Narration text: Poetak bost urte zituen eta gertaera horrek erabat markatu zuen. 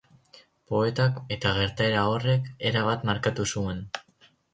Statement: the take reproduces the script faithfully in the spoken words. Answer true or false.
false